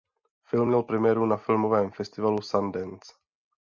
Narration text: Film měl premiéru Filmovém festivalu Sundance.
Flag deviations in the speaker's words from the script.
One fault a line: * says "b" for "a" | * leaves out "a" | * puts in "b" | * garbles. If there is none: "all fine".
* puts in "na"